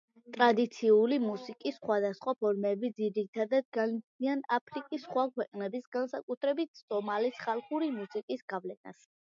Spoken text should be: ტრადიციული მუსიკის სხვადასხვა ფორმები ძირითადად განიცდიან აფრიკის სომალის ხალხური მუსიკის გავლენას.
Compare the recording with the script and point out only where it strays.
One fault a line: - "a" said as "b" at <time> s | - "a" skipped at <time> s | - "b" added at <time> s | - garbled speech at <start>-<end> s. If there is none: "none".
- "სხვა ქვეყნების განსაკუთრებით" added at 5.1 s